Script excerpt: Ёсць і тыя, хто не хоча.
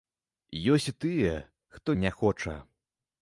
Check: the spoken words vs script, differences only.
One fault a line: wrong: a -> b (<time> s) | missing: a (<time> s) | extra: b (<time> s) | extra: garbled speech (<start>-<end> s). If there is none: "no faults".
no faults